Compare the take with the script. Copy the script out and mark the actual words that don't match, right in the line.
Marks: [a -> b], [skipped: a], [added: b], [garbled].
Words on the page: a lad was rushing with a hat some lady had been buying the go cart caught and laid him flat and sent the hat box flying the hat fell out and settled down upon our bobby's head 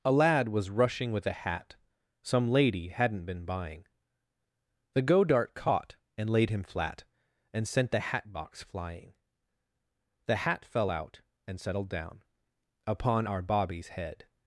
a lad was rushing with a hat some lady [had -> hadn't] been buying the go [cart -> dart] caught and laid him flat and sent the hat box flying the hat fell out and settled down upon our bobby's head